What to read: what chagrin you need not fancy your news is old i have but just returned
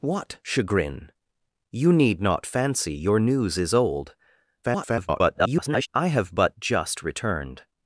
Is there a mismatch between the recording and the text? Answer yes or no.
yes